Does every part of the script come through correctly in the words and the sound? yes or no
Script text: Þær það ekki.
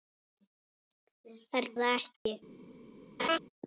no